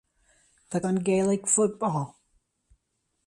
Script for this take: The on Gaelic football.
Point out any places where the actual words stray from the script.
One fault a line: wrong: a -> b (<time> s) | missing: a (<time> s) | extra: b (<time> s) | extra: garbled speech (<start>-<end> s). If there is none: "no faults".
no faults